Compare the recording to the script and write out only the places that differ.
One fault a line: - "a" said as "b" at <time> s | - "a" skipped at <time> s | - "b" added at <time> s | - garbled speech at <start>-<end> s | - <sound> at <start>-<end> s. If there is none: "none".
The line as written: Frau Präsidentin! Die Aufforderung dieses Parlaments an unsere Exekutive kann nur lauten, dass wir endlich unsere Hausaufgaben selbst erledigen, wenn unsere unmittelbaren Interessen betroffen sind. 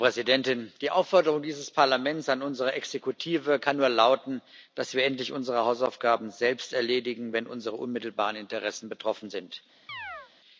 - chirp at 9.9-10.3 s